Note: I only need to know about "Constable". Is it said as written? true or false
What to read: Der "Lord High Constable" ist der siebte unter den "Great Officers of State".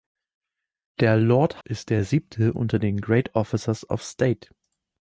false